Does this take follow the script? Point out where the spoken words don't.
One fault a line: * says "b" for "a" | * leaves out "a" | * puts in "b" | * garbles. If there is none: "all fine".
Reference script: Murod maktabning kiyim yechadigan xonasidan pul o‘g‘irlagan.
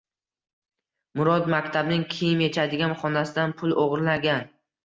all fine